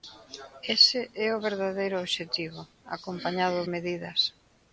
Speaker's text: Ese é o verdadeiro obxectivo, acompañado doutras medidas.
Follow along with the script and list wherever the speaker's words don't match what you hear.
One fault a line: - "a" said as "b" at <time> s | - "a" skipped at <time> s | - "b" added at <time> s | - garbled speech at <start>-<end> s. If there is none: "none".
- "doutras" skipped at 3.7 s